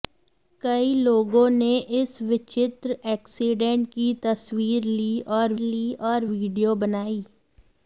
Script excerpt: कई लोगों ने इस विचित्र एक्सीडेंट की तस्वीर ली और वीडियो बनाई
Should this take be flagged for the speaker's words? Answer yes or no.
yes